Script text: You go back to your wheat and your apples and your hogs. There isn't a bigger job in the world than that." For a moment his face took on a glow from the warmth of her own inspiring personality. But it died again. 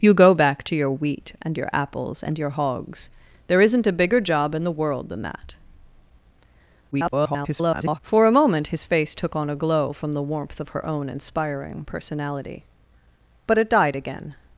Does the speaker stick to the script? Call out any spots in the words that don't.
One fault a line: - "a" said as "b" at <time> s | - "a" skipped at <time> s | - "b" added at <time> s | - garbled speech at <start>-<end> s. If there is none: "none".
- garbled speech at 6.9-8.0 s